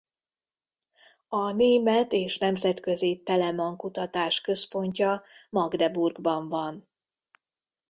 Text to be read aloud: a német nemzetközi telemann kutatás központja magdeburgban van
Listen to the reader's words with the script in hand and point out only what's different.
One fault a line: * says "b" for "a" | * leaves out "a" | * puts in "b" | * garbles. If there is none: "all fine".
* puts in "és"